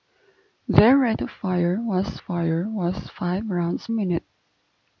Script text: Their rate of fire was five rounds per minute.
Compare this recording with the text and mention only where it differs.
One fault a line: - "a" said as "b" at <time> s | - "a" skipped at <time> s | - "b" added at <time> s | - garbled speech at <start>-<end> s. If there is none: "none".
- "fire was" added at 2.1 s
- "per" skipped at 3.9 s